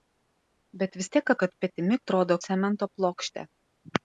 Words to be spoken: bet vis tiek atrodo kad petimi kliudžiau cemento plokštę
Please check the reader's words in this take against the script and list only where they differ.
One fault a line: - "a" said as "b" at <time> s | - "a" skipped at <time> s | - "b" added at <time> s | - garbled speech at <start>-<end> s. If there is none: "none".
- "atrodo" skipped at 1.3 s
- "kliudžiau" said as "atrodo" at 2.0 s